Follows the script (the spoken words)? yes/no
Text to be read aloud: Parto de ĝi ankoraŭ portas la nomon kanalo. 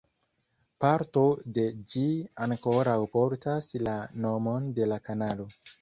no